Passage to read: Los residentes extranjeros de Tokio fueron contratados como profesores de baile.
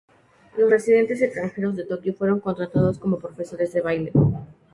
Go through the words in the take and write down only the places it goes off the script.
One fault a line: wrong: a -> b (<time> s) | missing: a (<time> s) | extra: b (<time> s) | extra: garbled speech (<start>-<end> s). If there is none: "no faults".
no faults